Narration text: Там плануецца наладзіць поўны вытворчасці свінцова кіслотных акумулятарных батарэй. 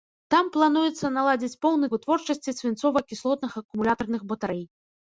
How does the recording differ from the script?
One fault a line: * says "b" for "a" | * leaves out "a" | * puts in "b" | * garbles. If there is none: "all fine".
all fine